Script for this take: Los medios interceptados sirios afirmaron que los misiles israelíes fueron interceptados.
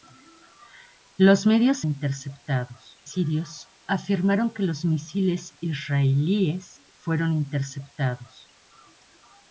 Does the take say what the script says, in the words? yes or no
yes